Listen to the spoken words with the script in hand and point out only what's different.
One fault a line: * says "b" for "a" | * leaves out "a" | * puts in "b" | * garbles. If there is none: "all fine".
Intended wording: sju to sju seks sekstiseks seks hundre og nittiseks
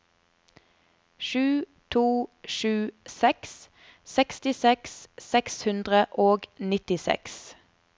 all fine